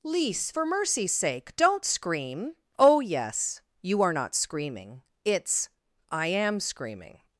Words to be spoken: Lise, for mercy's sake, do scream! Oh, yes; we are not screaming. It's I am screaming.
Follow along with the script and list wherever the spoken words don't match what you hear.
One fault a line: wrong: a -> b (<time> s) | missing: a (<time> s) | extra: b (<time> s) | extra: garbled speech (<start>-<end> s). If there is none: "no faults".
wrong: do -> don't (1.6 s)
wrong: we -> you (3.8 s)